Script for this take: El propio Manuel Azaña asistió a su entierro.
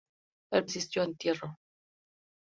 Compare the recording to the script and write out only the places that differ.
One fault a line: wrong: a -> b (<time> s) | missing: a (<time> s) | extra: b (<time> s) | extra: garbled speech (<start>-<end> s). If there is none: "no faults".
missing: propio Manuel Azaña (0.7 s)
missing: su (1.1 s)